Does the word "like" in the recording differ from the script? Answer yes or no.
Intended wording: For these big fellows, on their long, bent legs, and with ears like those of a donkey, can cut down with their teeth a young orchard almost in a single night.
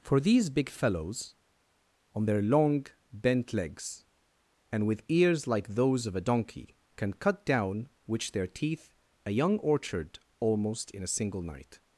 no